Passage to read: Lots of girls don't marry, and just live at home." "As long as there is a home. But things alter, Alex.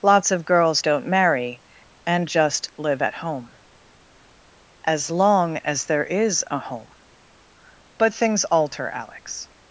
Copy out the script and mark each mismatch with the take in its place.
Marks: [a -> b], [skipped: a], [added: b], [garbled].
Lots of girls don't marry, and just live at home." "As long as there is a home. But things alter, Alex.